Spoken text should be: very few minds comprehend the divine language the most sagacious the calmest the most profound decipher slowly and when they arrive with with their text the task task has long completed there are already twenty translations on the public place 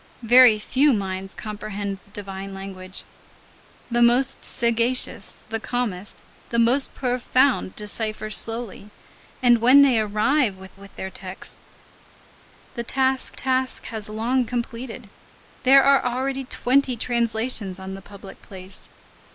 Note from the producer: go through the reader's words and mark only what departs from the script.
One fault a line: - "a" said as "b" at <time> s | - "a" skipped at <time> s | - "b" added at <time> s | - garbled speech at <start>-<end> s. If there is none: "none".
none